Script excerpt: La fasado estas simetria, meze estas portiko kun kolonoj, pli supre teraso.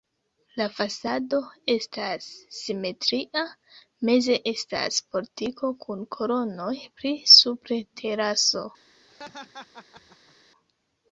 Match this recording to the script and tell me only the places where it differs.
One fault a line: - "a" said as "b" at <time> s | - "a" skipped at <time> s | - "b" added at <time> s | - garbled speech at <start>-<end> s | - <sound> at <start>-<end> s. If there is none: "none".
- laugh at 9.1-10.4 s